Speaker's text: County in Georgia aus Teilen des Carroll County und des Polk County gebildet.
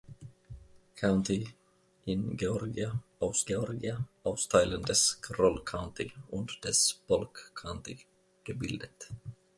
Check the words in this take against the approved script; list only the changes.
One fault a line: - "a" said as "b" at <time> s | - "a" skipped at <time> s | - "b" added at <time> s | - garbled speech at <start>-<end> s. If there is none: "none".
- "Georgia aus" added at 3.4 s